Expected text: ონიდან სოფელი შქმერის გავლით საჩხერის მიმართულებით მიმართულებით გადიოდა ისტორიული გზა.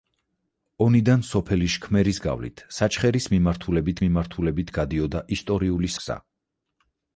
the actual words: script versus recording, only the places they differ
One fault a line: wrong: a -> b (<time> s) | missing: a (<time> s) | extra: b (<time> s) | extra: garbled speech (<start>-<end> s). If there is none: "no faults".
no faults